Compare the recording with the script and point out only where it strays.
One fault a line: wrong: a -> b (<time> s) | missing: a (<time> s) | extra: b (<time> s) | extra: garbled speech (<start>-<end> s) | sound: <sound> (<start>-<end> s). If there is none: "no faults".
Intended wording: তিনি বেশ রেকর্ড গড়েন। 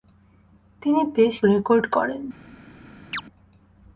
sound: chirp (3.1-3.2 s)